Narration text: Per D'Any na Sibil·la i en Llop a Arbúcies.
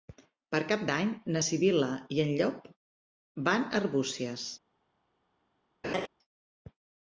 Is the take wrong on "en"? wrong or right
right